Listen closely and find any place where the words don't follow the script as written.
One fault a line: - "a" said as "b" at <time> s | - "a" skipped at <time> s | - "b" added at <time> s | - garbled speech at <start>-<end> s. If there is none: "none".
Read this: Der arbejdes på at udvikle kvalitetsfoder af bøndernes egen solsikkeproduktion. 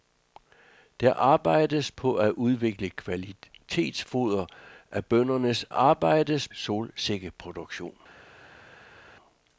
- "egen" said as "arbejdes" at 5.7 s